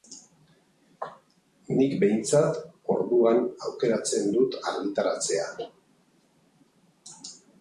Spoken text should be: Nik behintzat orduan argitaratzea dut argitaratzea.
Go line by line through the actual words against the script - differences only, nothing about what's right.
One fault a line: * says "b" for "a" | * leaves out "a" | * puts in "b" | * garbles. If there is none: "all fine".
* says "aukeratzen" for "argitaratzea"